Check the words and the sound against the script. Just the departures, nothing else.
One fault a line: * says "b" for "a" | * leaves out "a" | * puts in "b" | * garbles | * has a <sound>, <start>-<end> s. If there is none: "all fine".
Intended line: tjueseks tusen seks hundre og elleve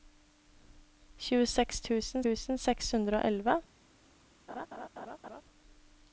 * puts in "tusen"
* has a laugh, 4.5-5.4 s